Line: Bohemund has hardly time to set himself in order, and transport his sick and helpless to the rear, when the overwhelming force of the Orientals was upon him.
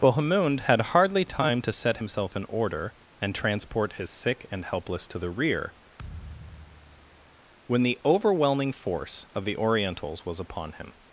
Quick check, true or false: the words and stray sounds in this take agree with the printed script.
false